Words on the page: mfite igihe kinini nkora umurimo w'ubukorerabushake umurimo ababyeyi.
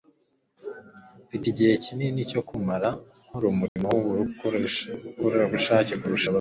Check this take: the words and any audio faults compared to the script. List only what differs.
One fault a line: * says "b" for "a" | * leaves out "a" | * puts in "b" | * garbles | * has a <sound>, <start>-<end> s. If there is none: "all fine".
* puts in "cyo kumara"
* has a dropout, 3.7-3.8 s
* says "kurusha" for "umurimo"